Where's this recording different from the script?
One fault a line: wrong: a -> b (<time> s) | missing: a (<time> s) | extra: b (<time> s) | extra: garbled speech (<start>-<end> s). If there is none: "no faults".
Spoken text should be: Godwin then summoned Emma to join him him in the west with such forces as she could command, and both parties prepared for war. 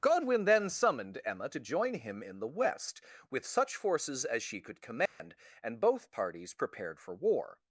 missing: him (2.2 s)